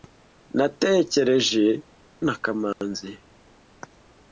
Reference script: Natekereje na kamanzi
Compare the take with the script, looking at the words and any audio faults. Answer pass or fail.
fail